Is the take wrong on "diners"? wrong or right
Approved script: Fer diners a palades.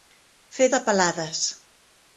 wrong